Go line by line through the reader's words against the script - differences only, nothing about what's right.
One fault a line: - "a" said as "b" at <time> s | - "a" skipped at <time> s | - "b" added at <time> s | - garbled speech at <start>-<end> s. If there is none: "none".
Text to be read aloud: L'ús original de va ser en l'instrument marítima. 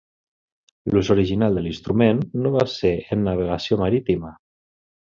- "l'instrument no" added at 1.7 s
- "l'instrument" said as "navegació" at 3.3 s